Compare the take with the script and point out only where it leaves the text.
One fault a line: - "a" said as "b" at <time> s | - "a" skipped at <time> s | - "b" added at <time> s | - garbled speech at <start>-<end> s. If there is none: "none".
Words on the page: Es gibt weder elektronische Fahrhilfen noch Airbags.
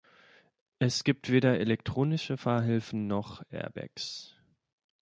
none